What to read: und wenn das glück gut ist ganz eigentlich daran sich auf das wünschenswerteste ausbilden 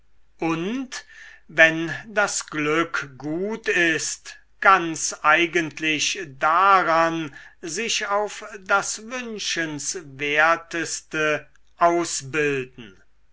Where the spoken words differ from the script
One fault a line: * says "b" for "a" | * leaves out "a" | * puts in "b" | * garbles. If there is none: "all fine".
all fine